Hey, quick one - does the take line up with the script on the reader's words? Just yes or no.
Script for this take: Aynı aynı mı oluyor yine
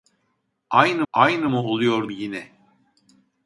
yes